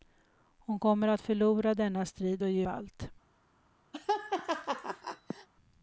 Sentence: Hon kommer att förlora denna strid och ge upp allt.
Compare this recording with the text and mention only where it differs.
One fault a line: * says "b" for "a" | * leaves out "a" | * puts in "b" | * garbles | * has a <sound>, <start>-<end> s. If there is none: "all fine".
* leaves out "upp"
* has a laugh, 3.9-5.5 s